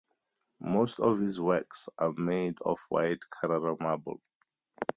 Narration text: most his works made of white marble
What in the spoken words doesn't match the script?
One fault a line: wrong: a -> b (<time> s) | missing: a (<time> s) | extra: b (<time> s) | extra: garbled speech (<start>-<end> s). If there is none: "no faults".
extra: of (1.0 s)
extra: are (2.0 s)
extra: carrara (3.3 s)